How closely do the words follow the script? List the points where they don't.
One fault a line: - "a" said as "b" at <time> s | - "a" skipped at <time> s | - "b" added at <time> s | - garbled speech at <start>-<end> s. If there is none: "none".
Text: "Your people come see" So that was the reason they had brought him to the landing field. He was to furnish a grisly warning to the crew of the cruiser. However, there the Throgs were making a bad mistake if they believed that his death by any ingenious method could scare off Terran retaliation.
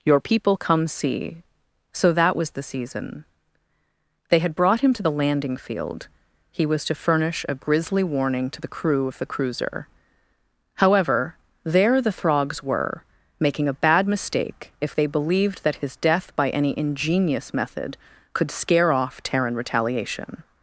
- "reason" said as "season" at 2.6 s